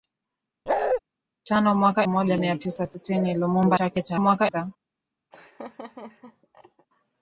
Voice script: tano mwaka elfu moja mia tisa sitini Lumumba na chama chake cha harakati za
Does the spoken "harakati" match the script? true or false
false